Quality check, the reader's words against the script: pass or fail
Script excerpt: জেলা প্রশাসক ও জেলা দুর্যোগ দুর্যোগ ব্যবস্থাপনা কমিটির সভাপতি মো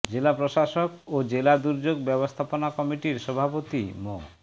fail